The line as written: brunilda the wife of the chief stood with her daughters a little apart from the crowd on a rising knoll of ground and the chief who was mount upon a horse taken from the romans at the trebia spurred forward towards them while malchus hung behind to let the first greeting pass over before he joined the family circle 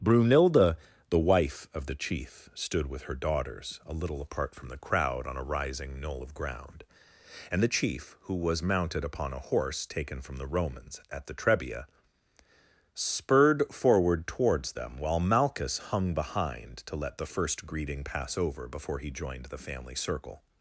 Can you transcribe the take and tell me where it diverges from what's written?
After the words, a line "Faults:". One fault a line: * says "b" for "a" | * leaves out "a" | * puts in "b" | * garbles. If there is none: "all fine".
brunilda the wife of the chief stood with her daughters a little apart from the crowd on a rising knoll of ground and the chief who was mounted upon a horse taken from the romans at the trebia spurred forward towards them while malchus hung behind to let the first greeting pass over before he joined the family circle
Faults:
* says "mounted" for "mount"